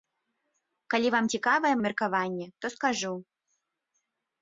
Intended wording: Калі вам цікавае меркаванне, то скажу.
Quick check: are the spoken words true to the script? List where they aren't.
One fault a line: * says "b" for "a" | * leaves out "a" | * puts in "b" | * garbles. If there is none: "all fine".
all fine